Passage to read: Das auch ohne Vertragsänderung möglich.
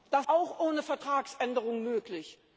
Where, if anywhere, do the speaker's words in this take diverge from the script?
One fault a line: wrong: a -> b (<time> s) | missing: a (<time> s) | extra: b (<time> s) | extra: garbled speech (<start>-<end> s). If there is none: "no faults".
no faults